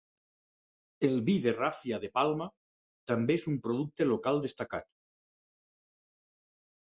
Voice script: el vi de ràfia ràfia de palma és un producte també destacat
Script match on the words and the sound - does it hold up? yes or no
no